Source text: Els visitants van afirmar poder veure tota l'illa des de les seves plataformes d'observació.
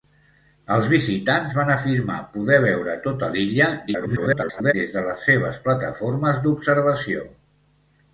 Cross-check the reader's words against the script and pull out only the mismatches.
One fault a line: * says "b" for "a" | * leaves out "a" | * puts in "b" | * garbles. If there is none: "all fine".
* garbles